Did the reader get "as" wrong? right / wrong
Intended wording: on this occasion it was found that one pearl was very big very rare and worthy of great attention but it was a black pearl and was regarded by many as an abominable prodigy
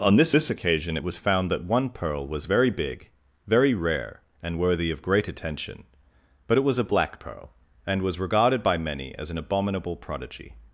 right